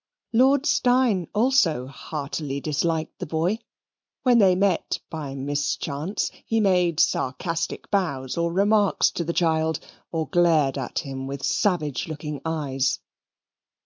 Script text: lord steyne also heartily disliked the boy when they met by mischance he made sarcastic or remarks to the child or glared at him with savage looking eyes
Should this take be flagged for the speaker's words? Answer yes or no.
yes